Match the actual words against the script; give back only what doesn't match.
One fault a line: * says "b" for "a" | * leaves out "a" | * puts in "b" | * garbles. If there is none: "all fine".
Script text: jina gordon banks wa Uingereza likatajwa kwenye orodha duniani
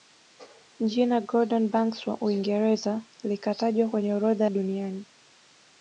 all fine